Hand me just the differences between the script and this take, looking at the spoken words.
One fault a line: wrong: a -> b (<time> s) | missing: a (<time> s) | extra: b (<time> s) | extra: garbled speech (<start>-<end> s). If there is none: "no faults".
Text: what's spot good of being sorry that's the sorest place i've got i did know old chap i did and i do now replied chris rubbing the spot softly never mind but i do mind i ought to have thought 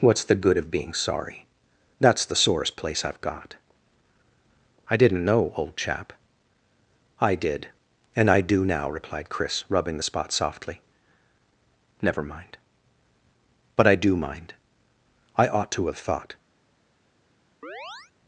wrong: spot -> the (0.2 s)
wrong: did -> didn't (5.0 s)